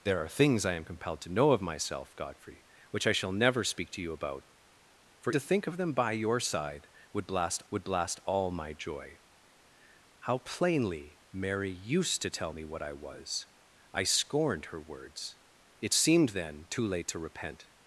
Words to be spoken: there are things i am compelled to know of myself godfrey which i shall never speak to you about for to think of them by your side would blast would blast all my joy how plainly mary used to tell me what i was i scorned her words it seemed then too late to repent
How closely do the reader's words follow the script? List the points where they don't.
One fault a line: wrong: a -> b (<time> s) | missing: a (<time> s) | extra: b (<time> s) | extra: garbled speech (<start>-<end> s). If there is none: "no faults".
no faults